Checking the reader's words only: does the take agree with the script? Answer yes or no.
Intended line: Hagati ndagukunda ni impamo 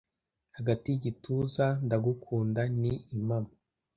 no